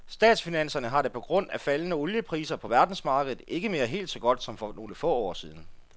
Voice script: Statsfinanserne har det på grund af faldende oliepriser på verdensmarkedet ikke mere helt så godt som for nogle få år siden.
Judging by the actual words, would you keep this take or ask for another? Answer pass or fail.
pass